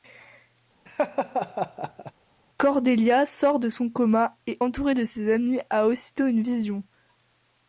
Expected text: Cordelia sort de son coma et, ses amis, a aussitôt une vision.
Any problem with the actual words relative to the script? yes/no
yes